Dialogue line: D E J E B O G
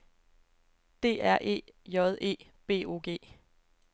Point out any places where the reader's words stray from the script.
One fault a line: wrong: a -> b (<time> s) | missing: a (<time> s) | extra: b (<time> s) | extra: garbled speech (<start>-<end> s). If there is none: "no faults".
extra: R (1.2 s)